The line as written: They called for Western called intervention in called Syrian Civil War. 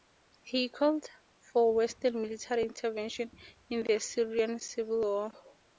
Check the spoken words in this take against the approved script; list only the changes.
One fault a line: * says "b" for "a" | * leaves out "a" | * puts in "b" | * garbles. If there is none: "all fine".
* says "He" for "They"
* says "military" for "called"
* says "the" for "called"